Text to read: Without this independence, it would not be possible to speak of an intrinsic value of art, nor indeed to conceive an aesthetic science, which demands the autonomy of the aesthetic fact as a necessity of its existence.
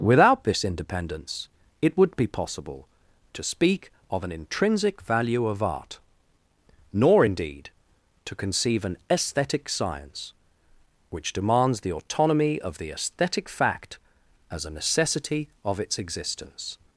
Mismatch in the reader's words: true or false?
true